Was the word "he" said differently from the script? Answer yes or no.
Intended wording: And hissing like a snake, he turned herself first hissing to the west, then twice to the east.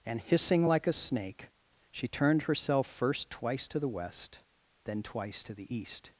yes